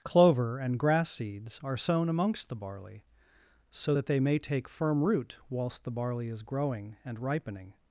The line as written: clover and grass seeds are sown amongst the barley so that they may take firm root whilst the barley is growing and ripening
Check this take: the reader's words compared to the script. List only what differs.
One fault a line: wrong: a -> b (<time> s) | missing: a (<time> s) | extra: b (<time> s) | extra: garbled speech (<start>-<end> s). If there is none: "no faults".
no faults